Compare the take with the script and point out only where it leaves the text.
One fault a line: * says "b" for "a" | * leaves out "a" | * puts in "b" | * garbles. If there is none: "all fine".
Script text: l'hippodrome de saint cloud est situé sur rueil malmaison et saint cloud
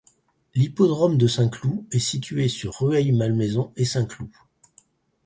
all fine